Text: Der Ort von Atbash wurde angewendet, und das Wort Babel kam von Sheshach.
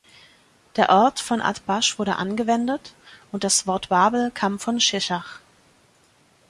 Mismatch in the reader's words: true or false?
false